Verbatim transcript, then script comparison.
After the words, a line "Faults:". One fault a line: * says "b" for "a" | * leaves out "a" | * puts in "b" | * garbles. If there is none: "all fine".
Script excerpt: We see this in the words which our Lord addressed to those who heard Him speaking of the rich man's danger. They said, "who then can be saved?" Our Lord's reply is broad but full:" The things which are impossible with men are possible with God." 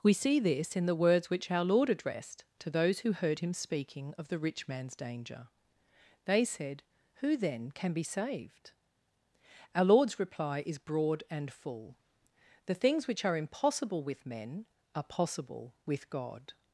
We see this in the words which our Lord addressed to those who heard Him speaking of the rich man's danger. They said, "who then can be saved?" Our Lord's reply is broad and full:" The things which are impossible with men are possible with God."
Faults:
* says "and" for "but"